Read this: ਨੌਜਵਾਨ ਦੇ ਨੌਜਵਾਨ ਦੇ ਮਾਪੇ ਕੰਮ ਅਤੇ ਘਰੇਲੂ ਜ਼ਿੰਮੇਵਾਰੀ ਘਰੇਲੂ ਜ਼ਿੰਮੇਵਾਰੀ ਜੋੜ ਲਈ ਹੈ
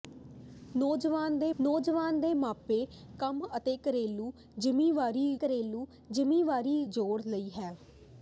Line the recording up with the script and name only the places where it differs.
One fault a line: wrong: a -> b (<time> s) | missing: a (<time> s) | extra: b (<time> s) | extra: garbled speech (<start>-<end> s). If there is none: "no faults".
no faults